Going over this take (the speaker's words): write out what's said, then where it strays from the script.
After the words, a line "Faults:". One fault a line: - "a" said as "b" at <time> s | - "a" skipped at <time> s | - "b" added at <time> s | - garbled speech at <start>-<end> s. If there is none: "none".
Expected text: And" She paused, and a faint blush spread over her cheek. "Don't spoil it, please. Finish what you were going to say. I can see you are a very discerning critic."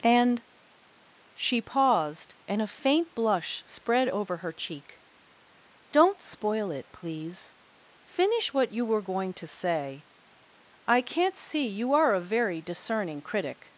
And" She paused, and a faint blush spread over her cheek. "Don't spoil it, please. Finish what you were going to say. I can't see you are a very discerning critic."
Faults:
- "can" said as "can't" at 11.0 s